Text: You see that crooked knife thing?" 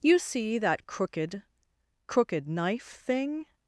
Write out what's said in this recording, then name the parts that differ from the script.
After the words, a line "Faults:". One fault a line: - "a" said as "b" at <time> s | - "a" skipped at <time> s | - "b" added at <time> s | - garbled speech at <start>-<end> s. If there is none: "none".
You see that crooked crooked knife thing?"
Faults:
- "crooked" added at 2.1 s